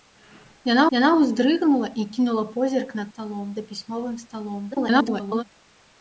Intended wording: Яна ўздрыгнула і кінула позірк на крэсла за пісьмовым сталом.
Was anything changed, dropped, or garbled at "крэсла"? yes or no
yes